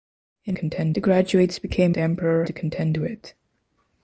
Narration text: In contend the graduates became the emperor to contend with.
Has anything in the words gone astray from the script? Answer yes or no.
no